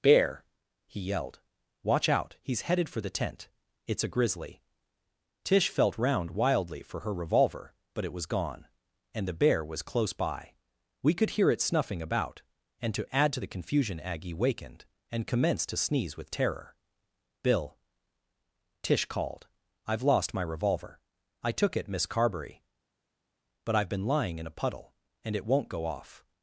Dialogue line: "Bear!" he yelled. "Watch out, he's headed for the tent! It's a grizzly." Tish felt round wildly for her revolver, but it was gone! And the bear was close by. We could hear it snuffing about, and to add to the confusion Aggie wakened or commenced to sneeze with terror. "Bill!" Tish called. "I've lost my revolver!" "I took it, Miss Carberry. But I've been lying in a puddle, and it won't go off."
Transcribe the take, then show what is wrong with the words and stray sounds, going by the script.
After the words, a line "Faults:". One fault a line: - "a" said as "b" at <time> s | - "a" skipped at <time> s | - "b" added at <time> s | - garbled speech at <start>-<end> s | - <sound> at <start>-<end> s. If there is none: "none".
"Bear!" he yelled. "Watch out, he's headed for the tent! It's a grizzly." Tish felt round wildly for her revolver, but it was gone! And the bear was close by. We could hear it snuffing about, and to add to the confusion Aggie wakened and commenced to sneeze with terror. "Bill!" Tish called. "I've lost my revolver!" "I took it, Miss Carberry. But I've been lying in a puddle, and it won't go off."
Faults:
- "or" said as "and" at 15.1 s